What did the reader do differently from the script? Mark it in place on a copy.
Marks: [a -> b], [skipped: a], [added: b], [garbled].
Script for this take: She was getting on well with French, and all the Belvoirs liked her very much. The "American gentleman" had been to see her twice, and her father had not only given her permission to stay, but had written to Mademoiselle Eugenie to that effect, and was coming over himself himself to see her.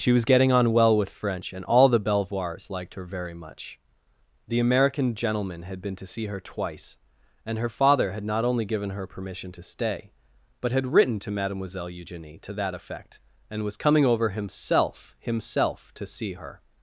She was getting on well with French, and all the Belvoirs liked her very much. The "American gentleman" had been to see her twice, and her father had not only given her permission to stay, but had written to Mademoiselle Eugenie to that effect, and was coming over himself himself to see her.